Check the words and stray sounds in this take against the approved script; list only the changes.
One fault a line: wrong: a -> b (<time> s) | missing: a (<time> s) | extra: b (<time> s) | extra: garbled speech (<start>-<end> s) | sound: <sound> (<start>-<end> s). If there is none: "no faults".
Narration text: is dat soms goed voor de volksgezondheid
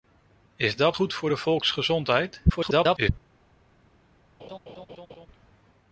missing: soms (1.0 s)
extra: garbled speech (2.5-3.1 s)
sound: laugh (4.4-5.3 s)